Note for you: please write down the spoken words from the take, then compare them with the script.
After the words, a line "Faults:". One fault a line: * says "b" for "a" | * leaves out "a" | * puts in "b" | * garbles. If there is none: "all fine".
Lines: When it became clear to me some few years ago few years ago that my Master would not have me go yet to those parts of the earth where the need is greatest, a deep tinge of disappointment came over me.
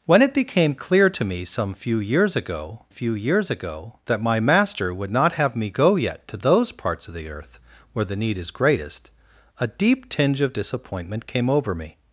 When it became clear to me some few years ago few years ago that my Master would not have me go yet to those parts of the earth where the need is greatest, a deep tinge of disappointment came over me.
Faults:
all fine